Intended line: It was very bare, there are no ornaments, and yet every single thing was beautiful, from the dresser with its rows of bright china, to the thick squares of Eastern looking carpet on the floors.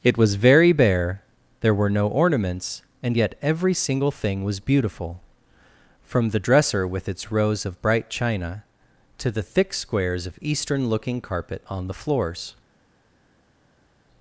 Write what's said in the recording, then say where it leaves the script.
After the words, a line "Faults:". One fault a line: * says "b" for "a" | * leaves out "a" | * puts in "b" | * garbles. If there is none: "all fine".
It was very bare, there were no ornaments, and yet every single thing was beautiful, from the dresser with its rows of bright china, to the thick squares of Eastern looking carpet on the floors.
Faults:
* says "were" for "are"